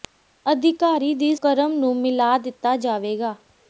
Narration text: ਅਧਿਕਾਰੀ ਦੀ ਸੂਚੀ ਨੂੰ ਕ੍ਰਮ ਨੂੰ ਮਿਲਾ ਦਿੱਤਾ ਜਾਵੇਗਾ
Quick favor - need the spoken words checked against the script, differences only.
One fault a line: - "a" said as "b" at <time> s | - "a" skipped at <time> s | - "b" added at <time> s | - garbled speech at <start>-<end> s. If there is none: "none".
- "ਸੂਚੀ ਨੂੰ" skipped at 1.4 s